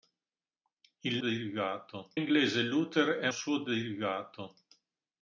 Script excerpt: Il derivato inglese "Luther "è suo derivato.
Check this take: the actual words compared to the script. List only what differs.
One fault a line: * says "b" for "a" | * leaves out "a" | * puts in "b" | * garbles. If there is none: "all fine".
all fine